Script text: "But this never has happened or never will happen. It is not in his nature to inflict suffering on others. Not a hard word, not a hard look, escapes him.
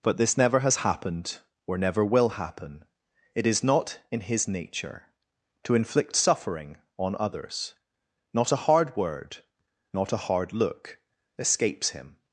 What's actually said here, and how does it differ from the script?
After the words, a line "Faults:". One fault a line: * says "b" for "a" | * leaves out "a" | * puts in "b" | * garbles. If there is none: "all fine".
"But this never has happened or never will happen. It is not in his nature to inflict suffering on others. Not a hard word, not a hard look, escapes him.
Faults:
all fine